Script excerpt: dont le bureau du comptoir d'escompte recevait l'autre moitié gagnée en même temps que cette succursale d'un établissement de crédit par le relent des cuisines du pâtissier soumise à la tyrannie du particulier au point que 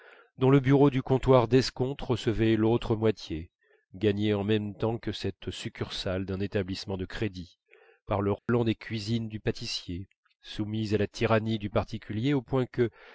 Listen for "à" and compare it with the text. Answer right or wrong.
right